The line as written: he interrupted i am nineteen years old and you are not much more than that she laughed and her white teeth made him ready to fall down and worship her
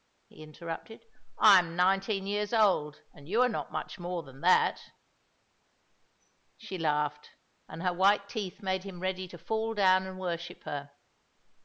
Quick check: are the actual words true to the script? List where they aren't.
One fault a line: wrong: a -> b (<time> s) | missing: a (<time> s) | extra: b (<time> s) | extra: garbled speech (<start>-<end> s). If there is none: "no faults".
no faults